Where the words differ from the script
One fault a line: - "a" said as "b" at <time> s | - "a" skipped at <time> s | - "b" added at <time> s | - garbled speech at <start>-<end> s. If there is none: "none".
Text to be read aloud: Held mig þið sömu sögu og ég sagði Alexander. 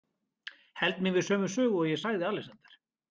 - "þið" said as "við" at 1.2 s